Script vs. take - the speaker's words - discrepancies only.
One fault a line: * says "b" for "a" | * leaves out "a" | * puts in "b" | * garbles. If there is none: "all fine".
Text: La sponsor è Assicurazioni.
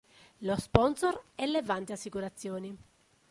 * says "Lo" for "La"
* puts in "Levante"